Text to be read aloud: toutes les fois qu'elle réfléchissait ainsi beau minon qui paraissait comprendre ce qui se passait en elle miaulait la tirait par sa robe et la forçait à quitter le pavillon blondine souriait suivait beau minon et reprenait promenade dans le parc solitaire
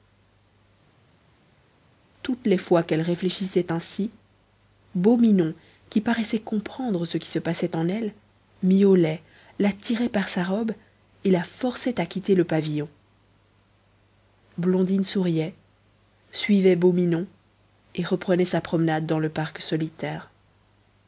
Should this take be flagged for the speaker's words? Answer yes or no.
yes